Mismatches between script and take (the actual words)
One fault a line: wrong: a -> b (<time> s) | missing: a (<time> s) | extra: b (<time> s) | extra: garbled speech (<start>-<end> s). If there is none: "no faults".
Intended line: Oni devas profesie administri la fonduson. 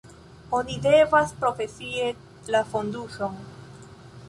missing: administri (2.1 s)